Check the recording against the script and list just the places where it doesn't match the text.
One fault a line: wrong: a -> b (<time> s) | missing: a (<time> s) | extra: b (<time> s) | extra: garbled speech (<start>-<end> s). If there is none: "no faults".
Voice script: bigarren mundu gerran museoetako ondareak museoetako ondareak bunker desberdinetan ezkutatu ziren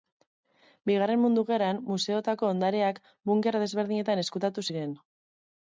missing: museoetako ondareak (3.0 s)